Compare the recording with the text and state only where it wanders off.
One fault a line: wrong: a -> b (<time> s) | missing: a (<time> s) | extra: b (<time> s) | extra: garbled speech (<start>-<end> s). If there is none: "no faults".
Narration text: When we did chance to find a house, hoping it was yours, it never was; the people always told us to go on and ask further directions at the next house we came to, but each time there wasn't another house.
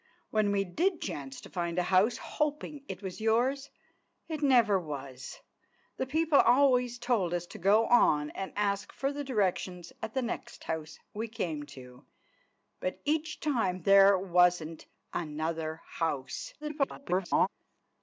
extra: garbled speech (16.6-17.5 s)